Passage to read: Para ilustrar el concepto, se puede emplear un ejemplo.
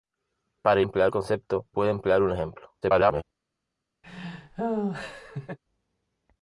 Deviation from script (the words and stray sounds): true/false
true